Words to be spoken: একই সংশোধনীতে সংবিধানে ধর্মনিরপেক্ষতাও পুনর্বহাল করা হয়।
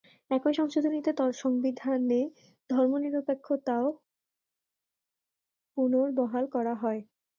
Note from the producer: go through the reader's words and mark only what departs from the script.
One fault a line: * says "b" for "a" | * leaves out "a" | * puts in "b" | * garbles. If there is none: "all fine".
all fine